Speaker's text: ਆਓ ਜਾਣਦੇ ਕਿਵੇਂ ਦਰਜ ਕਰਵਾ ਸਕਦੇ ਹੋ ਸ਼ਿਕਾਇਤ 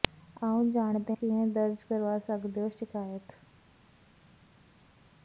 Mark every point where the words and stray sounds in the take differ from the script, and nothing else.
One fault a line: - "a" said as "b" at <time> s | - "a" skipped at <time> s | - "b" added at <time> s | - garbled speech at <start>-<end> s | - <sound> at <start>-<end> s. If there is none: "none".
none